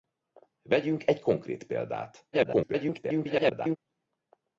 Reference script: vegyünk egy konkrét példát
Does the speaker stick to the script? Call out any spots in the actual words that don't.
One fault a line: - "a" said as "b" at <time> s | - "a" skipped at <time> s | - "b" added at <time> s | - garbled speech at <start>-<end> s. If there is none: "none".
- garbled speech at 2.3-3.8 s